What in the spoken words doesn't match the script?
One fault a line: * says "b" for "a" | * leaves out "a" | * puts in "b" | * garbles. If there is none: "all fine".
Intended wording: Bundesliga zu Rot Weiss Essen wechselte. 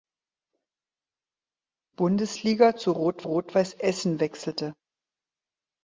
* puts in "Rot"